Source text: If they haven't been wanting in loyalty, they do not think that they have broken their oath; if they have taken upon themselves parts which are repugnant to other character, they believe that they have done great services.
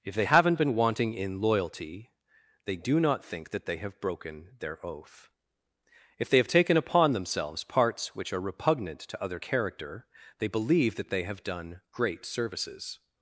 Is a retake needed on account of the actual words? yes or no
no